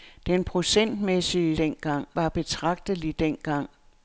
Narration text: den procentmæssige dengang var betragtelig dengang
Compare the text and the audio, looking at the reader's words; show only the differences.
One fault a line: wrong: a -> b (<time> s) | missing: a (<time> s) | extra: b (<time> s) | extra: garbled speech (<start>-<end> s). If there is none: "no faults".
no faults